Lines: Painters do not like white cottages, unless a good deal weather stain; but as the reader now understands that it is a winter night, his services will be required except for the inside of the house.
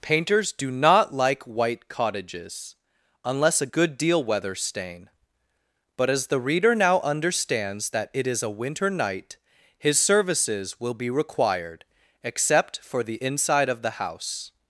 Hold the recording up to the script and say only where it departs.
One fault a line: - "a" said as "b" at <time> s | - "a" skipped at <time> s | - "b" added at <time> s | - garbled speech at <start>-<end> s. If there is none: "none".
none